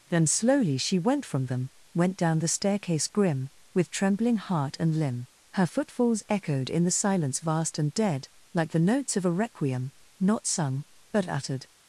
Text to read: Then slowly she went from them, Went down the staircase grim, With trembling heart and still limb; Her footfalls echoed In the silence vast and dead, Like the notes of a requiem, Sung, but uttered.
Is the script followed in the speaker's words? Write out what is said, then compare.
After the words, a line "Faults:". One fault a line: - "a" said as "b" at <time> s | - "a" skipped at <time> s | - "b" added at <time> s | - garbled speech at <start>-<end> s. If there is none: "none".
Then slowly she went from them, Went down the staircase grim, With trembling heart and limb; Her footfalls echoed In the silence vast and dead, Like the notes of a requiem, Not sung, but uttered.
Faults:
- "still" skipped at 5.0 s
- "Not" added at 10.2 s